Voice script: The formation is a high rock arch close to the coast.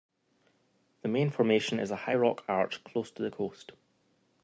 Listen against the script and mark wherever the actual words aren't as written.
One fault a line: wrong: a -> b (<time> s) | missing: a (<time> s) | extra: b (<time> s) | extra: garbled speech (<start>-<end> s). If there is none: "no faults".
extra: main (1.1 s)